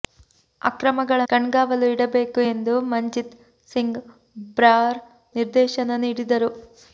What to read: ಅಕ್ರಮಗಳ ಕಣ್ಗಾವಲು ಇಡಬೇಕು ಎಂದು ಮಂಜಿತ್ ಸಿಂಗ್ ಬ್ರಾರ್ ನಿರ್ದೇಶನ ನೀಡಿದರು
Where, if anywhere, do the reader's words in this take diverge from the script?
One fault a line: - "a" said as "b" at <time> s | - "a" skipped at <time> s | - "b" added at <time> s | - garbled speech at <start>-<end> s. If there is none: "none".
none